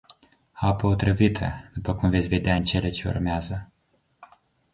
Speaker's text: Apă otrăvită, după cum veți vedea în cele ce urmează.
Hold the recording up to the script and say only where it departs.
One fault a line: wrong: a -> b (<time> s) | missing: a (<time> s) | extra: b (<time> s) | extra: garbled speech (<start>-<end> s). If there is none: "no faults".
no faults